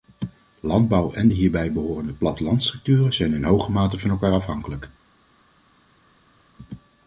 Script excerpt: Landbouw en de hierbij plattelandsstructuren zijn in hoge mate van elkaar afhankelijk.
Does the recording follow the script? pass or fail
fail